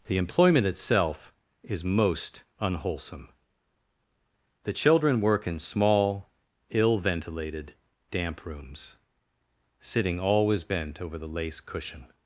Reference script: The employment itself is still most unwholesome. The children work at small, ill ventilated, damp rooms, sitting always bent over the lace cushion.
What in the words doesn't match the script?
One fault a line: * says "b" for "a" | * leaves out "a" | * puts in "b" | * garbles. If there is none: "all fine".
* leaves out "still"
* says "in" for "at"